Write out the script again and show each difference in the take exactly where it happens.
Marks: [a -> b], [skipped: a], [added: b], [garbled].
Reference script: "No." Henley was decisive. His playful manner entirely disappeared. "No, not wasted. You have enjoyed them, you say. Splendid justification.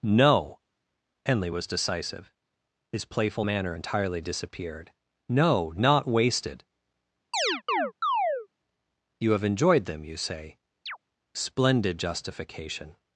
"No." Henley was decisive. His playful manner entirely disappeared. "No, not wasted. You have enjoyed them, you say. Splendid justification.